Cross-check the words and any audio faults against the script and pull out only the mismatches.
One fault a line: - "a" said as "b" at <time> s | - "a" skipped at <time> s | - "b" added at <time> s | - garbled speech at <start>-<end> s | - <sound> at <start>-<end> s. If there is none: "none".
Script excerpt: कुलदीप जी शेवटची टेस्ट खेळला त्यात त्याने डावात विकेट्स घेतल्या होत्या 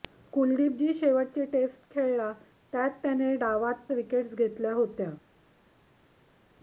none